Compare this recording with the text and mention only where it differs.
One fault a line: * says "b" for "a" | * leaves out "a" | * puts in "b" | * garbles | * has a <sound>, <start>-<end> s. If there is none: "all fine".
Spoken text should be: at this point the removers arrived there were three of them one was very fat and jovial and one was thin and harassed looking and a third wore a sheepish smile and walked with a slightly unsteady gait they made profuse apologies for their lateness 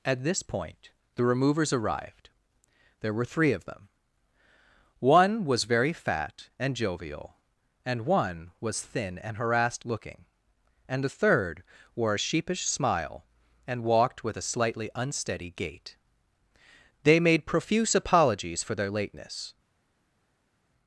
* says "the" for "a"